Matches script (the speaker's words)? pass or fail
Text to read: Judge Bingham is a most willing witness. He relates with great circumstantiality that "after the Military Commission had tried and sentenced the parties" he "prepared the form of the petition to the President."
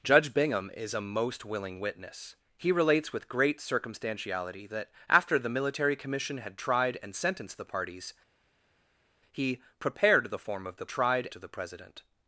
fail